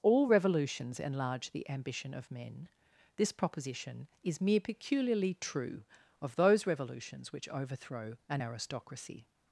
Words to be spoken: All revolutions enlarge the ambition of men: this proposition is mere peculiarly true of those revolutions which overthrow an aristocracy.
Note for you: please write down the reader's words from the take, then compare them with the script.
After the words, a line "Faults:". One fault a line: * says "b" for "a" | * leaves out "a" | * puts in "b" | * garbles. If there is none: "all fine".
All revolutions enlarge the ambition of men: this proposition is mere peculiarly true of those revolutions which overthrow an aristocracy.
Faults:
all fine